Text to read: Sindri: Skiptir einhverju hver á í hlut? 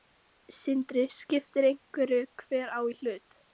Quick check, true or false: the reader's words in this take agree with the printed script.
true